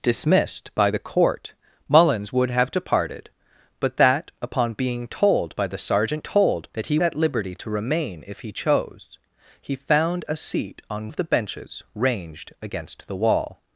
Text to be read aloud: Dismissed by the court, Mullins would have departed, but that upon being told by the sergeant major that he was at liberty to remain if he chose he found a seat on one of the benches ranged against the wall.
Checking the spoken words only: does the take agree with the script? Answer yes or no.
no